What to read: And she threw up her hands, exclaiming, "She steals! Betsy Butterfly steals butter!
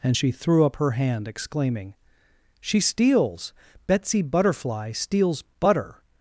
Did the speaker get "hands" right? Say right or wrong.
wrong